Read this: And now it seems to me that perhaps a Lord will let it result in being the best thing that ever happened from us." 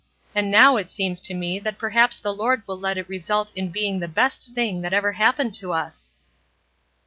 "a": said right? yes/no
no